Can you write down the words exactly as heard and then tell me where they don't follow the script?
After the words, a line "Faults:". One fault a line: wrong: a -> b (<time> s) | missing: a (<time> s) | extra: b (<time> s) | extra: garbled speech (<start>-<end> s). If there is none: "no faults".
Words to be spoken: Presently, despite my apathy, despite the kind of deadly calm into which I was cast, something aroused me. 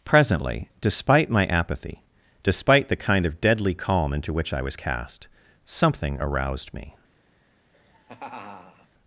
Presently, despite my apathy, despite the kind of deadly calm into which I was cast, something aroused me.
Faults:
no faults